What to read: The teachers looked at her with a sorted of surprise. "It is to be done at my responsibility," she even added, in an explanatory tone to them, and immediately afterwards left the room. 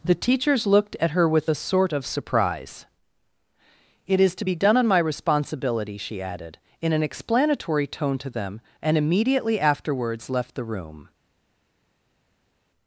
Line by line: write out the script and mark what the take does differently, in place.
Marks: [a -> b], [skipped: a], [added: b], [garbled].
The teachers looked at her with a [sorted -> sort] of surprise. "It is to be done [at -> on] my responsibility," she [skipped: even] added, in an explanatory tone to them, and immediately afterwards left the room.